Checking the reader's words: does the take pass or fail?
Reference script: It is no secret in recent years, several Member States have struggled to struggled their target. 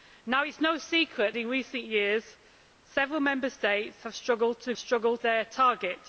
pass